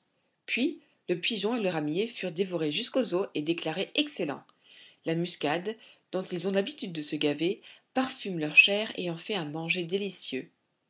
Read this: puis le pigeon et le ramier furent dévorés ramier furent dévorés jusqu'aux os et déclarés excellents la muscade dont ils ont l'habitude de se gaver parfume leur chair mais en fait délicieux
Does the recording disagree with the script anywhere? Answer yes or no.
yes